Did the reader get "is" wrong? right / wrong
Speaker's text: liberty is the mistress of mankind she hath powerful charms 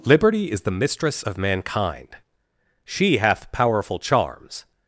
right